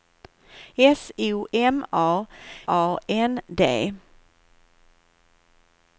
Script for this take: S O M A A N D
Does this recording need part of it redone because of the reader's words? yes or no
no